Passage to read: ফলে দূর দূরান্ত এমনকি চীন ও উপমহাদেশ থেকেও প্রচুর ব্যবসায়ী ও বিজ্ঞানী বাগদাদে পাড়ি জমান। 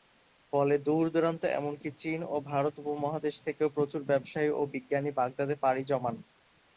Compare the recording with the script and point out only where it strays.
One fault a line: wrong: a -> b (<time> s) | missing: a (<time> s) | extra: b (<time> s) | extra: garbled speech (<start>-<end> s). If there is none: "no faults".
extra: ভারত (2.5 s)